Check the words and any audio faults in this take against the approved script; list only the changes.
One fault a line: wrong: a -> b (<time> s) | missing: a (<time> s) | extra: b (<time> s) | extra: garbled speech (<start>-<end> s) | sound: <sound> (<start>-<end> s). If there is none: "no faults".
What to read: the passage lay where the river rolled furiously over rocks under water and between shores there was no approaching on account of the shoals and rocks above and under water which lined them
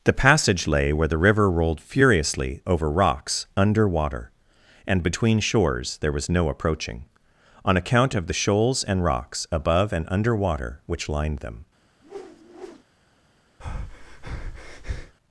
sound: whoosh (12.0-12.8 s)
sound: breath (13.6-15.1 s)